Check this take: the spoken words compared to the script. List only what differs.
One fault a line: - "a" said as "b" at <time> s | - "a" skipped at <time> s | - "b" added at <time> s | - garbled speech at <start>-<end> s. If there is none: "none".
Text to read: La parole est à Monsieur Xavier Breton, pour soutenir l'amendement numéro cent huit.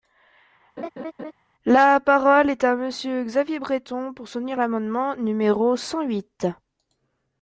none